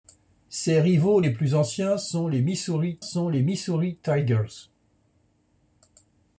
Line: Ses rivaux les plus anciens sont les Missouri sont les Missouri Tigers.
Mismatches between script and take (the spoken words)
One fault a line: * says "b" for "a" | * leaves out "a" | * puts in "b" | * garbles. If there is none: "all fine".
all fine